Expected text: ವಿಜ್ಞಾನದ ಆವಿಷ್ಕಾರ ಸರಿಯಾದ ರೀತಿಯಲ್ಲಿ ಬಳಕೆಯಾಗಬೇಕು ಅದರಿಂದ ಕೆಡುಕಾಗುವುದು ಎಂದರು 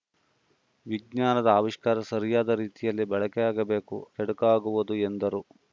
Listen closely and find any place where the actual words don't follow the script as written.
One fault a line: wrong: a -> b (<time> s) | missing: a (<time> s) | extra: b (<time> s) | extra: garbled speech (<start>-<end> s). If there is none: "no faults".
missing: ಅದರಿಂದ (4.0 s)